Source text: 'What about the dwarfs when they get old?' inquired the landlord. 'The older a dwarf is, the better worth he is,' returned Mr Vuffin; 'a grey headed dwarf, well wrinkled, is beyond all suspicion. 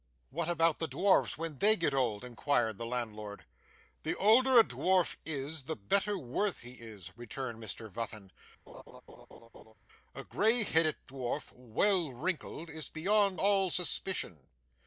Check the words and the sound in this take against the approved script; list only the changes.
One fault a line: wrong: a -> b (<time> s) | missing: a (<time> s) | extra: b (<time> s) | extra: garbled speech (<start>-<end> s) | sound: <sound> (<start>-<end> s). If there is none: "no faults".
sound: laugh (8.7-9.7 s)